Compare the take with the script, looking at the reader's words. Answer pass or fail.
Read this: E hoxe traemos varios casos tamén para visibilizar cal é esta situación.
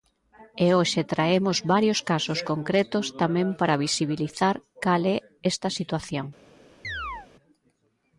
fail